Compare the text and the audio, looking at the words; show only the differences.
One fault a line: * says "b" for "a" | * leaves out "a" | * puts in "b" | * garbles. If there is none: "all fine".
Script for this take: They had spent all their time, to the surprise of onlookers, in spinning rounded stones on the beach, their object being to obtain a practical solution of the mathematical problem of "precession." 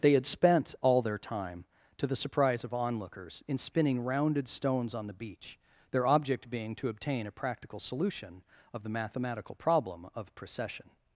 all fine